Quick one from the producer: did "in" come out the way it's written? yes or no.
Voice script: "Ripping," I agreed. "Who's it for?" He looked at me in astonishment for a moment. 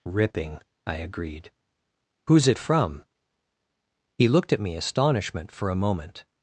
no